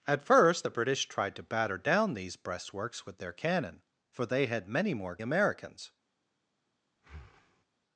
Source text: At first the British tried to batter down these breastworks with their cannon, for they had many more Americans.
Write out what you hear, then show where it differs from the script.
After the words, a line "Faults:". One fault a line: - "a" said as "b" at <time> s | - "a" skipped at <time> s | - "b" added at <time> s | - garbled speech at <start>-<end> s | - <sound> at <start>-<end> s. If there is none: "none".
At first the British tried to batter down these breastworks with their cannon, for they had many more Americans.
Faults:
- breath at 7.0-7.7 s